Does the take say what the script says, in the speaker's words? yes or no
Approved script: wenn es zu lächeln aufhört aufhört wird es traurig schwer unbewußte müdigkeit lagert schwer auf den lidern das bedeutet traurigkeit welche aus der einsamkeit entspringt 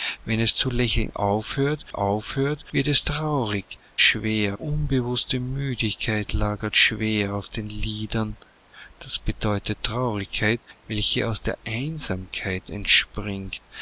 yes